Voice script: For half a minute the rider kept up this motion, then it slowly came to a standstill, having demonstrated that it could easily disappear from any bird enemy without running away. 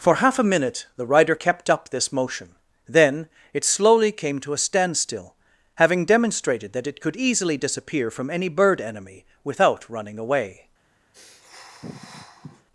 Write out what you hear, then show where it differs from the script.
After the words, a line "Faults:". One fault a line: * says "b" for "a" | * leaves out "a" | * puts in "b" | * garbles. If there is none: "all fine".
For half a minute the rider kept up this motion, then it slowly came to a standstill, having demonstrated that it could easily disappear from any bird enemy without running away.
Faults:
all fine